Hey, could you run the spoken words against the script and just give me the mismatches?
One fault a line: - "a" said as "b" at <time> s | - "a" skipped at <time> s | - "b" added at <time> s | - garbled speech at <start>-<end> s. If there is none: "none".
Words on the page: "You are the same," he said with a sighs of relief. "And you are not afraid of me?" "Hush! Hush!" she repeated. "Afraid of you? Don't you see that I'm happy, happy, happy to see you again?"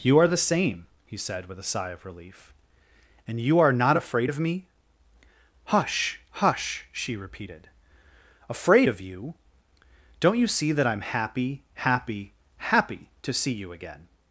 - "sighs" said as "sigh" at 1.6 s